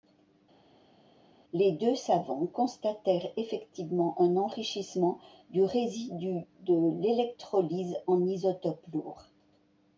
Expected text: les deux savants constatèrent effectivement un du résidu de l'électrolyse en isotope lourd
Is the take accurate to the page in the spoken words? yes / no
no